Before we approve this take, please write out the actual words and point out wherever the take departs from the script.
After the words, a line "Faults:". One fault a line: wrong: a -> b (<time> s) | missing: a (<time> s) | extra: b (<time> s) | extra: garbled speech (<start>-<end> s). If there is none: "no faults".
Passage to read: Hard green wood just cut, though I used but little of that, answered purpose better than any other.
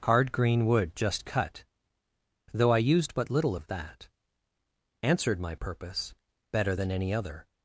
Hard green wood just cut, though I used but little of that, answered my purpose better than any other.
Faults:
extra: my (5.4 s)